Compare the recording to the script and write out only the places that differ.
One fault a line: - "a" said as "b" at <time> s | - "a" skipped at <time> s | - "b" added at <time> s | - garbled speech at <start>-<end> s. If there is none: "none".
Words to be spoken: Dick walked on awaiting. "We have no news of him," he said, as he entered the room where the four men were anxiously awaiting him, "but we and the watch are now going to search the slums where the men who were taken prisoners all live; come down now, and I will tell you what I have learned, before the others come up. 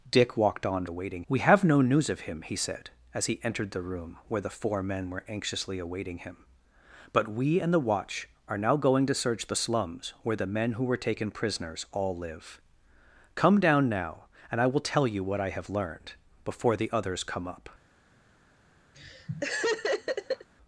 none